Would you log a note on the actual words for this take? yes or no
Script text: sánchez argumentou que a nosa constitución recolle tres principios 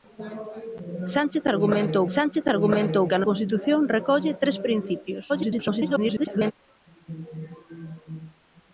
yes